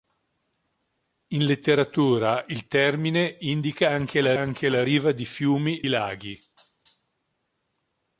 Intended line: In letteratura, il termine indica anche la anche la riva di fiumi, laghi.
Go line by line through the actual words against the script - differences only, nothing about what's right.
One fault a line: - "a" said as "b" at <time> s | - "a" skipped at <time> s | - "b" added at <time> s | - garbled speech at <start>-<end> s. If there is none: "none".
none